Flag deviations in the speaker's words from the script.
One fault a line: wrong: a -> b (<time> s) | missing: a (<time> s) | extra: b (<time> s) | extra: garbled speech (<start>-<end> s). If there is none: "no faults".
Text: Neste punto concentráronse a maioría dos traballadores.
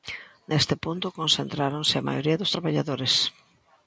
no faults